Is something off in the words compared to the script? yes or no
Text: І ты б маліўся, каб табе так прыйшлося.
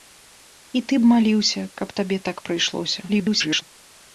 yes